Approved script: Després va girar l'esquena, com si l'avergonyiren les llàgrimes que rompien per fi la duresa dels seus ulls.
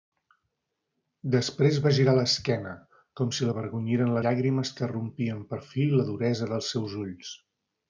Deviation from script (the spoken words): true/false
true